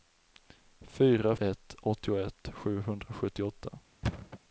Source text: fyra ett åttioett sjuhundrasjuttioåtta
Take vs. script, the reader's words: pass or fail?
pass